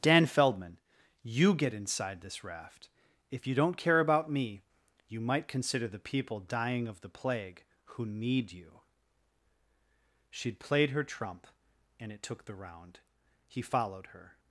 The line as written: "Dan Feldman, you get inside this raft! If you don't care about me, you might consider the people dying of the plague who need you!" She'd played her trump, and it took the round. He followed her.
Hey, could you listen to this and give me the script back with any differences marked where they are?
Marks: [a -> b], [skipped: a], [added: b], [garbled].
"Dan Feldman, you get inside this raft! If you don't care about me, you might consider the people dying of the plague who need you!" She'd played her trump, and it took the round. He followed her.